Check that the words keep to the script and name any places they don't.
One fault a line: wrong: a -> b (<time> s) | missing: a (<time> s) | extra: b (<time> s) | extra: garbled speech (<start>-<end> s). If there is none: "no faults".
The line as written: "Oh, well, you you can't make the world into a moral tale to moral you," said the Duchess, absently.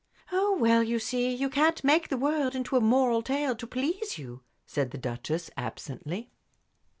extra: see (1.0 s)
wrong: moral -> please (3.7 s)